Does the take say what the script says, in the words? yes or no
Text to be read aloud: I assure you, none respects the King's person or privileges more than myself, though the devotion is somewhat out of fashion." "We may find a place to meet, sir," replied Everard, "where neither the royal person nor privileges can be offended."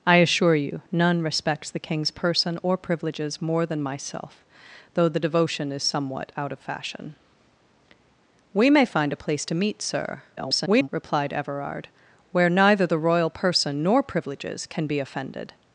no